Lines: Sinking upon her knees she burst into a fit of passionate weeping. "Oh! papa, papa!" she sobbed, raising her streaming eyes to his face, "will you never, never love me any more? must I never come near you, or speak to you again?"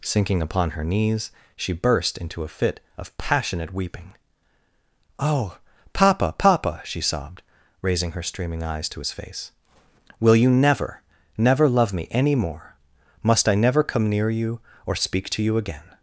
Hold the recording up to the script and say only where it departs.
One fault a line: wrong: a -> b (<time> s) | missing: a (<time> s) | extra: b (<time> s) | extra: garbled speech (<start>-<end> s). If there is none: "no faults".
no faults